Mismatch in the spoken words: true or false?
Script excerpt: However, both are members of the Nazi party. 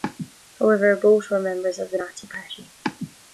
true